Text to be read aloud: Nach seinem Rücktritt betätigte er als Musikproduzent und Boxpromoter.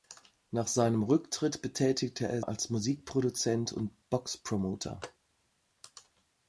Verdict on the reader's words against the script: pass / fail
pass